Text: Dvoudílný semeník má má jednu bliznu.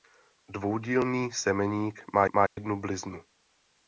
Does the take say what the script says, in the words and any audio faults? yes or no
no